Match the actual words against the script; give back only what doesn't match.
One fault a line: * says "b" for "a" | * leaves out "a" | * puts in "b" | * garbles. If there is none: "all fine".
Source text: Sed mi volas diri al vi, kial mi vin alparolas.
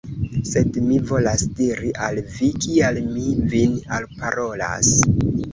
all fine